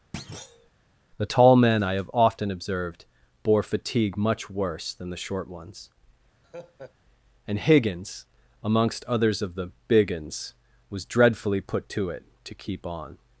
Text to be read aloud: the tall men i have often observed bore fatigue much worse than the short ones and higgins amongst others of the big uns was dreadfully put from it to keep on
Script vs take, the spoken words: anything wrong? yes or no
yes